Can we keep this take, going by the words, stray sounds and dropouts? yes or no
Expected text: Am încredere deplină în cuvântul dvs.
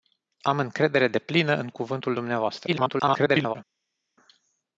no